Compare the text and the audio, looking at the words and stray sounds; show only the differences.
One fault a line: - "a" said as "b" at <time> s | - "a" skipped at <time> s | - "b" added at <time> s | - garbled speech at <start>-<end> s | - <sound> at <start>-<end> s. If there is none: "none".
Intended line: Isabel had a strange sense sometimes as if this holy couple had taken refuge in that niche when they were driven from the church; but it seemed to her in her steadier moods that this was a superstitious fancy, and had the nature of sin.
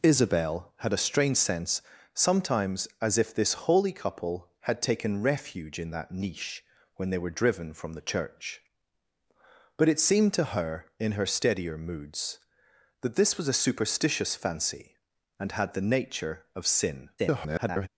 - garbled speech at 17.2-17.9 s